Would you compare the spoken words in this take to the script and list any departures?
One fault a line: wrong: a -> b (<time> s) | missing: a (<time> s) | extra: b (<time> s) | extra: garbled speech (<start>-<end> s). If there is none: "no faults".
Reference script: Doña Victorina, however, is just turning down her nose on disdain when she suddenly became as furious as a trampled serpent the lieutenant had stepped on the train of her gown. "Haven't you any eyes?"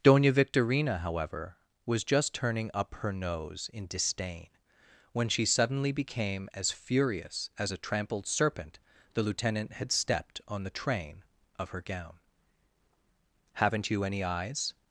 wrong: is -> was (1.9 s)
wrong: down -> up (2.7 s)
wrong: on -> in (3.7 s)